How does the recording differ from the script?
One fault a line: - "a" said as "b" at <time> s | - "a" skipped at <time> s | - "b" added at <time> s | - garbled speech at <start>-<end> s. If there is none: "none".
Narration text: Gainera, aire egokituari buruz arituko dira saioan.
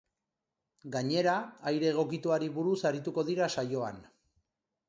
none